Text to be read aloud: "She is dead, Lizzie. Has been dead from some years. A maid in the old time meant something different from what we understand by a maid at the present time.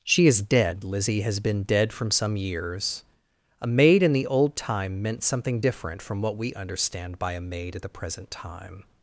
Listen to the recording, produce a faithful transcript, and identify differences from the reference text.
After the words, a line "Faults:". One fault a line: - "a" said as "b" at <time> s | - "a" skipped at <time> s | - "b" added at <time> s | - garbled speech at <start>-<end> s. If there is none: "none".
"She is dead, Lizzie. Has been dead from some years. A maid in the old time meant something different from what we understand by a maid at the present time.
Faults:
none